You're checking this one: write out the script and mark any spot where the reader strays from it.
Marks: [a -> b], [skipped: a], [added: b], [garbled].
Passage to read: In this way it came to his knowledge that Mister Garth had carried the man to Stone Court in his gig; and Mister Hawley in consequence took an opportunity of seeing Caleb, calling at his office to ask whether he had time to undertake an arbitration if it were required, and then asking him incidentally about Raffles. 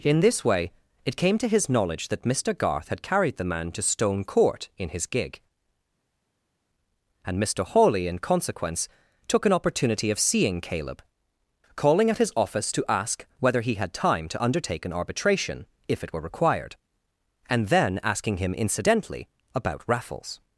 In this way it came to his knowledge that Mister Garth had carried the man to Stone Court in his gig; and Mister Hawley in consequence took an opportunity of seeing Caleb, calling at his office to ask whether he had time to undertake an arbitration if it were required, and then asking him incidentally about Raffles.